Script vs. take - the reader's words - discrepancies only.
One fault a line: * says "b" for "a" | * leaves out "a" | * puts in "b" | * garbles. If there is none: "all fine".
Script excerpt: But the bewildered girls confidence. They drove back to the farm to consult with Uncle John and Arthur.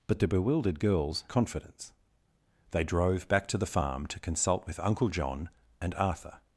all fine